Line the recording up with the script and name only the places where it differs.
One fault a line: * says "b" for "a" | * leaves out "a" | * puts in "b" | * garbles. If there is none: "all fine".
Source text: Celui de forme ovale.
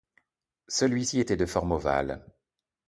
* puts in "ci était"